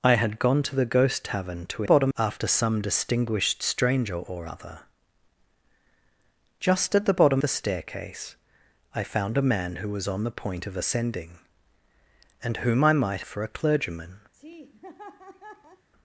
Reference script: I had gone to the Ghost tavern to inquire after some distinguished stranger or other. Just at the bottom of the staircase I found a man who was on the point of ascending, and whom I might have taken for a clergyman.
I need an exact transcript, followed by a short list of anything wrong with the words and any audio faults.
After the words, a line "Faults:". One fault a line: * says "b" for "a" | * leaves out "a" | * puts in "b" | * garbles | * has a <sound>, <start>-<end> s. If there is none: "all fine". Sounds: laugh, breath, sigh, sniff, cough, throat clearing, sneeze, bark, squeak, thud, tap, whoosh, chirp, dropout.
I had gone to the Ghost tavern to bottom after some distinguished stranger or other. Just at the bottom the staircase I found a man who was on the point of ascending, and whom I might for a clergyman.
Faults:
* says "bottom" for "inquire"
* leaves out "of"
* leaves out "have taken"
* has a laugh, 14.3-15.9 s